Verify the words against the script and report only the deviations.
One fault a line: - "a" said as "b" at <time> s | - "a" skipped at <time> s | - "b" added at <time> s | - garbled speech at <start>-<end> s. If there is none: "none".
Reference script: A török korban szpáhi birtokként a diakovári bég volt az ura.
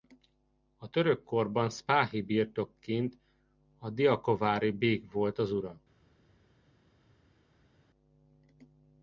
none